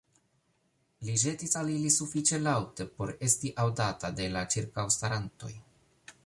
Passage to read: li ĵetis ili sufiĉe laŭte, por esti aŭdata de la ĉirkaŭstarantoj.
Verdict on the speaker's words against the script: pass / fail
fail